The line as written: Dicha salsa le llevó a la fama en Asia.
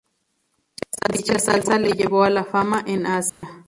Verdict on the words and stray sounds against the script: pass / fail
fail